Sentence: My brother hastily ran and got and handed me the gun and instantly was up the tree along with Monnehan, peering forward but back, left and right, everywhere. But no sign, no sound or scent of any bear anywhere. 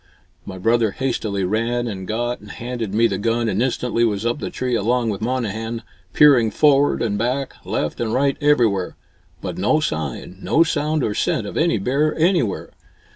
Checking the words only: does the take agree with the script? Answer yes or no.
no